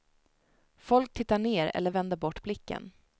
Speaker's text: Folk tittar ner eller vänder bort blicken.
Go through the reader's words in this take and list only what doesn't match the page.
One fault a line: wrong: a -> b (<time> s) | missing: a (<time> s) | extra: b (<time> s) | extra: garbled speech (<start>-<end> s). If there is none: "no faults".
no faults